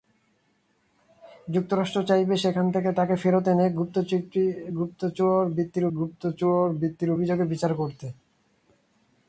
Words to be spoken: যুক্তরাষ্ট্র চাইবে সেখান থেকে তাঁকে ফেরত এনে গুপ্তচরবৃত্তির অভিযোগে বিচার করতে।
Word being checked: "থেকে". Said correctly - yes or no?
yes